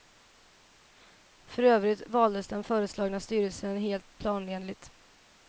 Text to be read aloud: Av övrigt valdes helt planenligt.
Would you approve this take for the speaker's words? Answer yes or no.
no